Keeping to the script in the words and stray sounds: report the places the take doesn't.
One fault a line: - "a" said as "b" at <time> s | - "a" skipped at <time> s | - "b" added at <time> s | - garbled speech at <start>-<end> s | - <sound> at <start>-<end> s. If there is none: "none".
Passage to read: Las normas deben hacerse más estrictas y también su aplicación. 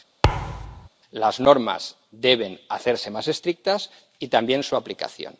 - thud at 0.2-0.9 s